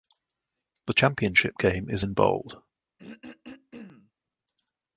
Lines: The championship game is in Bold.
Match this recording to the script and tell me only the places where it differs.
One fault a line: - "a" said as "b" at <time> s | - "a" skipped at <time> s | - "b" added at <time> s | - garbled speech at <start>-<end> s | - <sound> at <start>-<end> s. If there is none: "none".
- throat clearing at 3.0-4.1 s